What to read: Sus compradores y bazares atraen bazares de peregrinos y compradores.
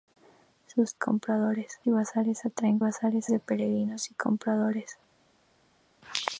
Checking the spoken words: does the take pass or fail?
pass